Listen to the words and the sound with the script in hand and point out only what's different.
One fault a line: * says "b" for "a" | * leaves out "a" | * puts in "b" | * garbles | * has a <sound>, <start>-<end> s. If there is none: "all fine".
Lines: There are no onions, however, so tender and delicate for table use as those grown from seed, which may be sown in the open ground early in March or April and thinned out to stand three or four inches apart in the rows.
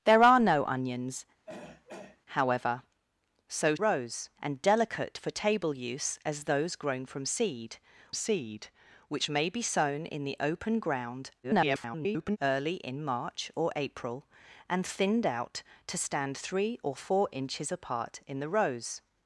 * has a throat clearing, 1.5-2.2 s
* says "rows" for "tender"
* puts in "seed"
* garbles